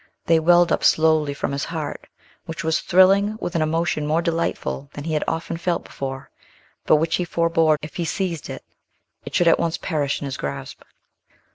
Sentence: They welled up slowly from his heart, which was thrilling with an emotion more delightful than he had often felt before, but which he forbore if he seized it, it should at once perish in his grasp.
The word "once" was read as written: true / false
true